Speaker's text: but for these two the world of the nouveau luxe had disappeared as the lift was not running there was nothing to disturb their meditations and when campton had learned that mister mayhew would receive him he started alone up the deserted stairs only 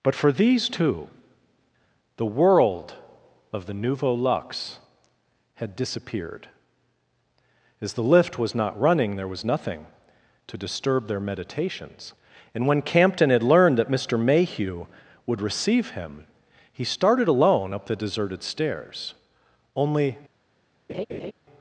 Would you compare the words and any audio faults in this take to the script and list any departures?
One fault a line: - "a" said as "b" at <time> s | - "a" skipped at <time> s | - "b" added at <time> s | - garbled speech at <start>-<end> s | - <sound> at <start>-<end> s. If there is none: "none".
- laugh at 20.9-21.3 s